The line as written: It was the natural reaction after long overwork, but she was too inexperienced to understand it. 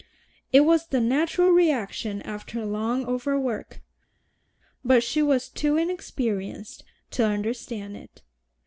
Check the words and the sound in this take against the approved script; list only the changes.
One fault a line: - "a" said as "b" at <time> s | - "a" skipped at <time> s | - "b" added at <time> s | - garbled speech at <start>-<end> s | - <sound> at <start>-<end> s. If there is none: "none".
none